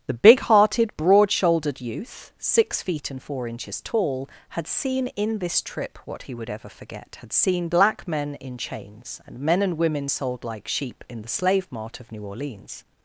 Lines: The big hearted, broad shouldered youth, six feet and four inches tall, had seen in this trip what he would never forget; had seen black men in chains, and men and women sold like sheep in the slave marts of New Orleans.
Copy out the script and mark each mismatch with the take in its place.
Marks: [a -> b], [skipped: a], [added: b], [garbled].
The big hearted, broad shouldered youth, six feet and four inches tall, had seen in this trip what he would [never -> ever] forget; had seen black men in chains, and men and women sold like sheep in the slave [marts -> mart] of New Orleans.